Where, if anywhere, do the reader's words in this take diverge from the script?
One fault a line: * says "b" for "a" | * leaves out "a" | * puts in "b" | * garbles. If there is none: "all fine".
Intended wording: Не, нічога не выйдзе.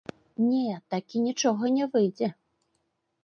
* puts in "такі"